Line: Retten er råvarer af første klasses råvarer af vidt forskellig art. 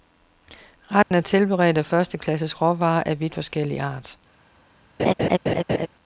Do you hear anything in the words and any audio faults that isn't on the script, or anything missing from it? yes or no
yes